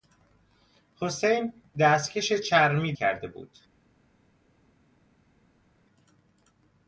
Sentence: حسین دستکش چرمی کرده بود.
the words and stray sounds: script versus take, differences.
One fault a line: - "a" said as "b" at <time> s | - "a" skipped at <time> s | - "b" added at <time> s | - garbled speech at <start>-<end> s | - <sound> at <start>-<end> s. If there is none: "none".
none